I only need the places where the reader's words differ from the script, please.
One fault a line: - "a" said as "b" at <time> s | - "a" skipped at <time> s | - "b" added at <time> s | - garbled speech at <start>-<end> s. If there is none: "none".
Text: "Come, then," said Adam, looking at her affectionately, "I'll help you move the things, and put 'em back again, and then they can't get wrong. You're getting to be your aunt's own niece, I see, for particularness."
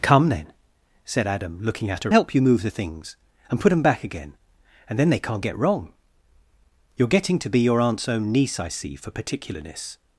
- "affectionately I'll" skipped at 2.1 s